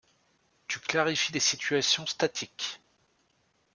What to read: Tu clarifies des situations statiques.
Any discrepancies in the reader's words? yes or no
no